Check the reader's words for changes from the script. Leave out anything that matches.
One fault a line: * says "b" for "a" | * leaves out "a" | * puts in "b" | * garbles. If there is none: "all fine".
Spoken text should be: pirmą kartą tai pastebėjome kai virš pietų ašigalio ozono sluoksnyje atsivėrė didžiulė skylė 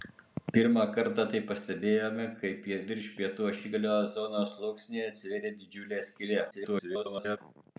* garbles